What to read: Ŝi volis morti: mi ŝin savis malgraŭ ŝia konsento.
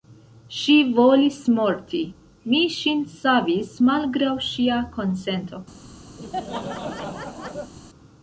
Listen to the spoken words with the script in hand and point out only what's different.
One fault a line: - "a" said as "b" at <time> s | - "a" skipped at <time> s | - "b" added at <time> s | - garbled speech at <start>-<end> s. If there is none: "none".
none